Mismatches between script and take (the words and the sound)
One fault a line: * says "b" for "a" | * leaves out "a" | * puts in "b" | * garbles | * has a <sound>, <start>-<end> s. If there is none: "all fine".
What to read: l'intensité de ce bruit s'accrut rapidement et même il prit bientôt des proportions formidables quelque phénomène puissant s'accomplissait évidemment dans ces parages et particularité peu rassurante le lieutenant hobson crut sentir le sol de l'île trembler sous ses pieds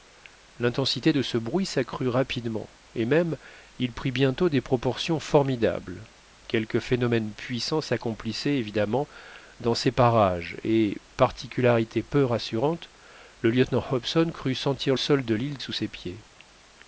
* leaves out "le"
* leaves out "trembler"